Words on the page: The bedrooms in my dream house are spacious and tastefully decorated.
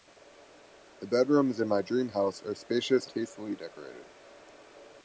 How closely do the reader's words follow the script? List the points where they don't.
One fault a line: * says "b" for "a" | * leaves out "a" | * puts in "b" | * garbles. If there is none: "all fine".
* leaves out "and"